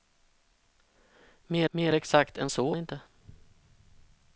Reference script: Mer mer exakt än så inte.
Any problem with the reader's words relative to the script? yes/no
no